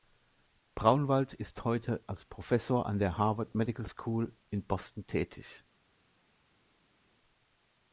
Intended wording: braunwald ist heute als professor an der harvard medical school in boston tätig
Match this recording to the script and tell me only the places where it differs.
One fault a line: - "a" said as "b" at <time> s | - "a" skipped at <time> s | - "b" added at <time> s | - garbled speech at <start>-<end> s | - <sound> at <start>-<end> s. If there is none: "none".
none